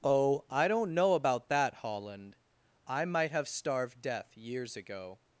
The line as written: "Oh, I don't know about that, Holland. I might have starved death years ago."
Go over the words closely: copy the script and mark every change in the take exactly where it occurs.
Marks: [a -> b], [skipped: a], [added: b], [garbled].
"Oh, I don't know about that, Holland. I might have starved death years ago."